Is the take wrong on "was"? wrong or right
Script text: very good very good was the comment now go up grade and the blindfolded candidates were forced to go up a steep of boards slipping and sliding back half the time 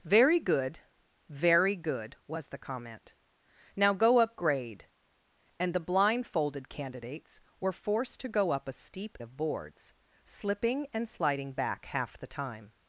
right